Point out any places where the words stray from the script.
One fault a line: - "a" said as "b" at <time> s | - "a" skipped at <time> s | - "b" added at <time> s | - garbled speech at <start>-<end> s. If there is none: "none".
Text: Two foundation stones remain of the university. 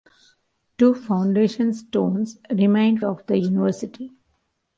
none